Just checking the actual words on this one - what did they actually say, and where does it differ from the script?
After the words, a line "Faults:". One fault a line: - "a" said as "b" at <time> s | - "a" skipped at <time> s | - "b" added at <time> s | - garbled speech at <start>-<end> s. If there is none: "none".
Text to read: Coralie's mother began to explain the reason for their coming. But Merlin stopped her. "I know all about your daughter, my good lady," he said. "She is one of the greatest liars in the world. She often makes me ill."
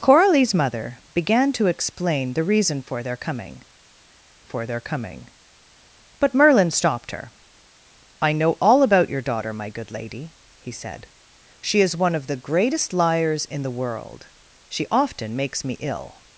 Coralie's mother began to explain the reason for their coming for their coming. But Merlin stopped her. "I know all about your daughter, my good lady," he said. "She is one of the greatest liars in the world. She often makes me ill."
Faults:
- "for their coming" added at 4.4 s